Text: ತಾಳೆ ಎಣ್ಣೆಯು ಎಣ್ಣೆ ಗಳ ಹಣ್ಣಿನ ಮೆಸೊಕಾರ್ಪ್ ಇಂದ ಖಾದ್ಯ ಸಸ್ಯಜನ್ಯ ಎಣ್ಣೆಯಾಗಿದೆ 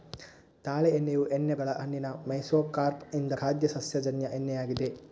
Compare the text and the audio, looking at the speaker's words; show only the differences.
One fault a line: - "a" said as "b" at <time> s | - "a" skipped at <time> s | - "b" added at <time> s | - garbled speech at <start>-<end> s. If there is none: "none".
none